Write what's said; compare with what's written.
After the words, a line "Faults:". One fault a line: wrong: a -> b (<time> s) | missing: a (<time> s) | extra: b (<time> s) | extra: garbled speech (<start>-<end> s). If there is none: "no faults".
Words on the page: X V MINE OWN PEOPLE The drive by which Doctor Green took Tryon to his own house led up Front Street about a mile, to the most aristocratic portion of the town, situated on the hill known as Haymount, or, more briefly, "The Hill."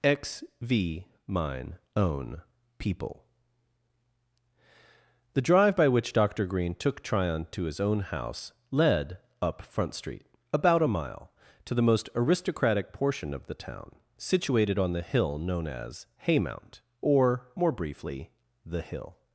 X V MINE OWN PEOPLE The drive by which Doctor Green took Tryon to his own house led up Front Street about a mile, to the most aristocratic portion of the town, situated on the hill known as Haymount, or, more briefly, "The Hill."
Faults:
no faults